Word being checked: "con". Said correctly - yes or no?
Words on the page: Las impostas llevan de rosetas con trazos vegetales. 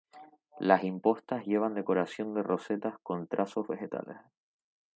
yes